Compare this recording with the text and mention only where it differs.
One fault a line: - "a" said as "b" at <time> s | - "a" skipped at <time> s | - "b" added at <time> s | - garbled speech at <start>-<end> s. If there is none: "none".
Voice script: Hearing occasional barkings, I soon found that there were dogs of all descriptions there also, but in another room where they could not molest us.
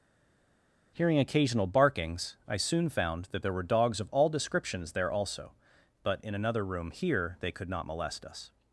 - "where" said as "here" at 6.9 s